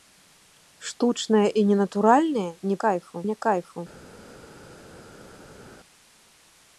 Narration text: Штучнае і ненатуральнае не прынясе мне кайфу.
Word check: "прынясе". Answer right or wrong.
wrong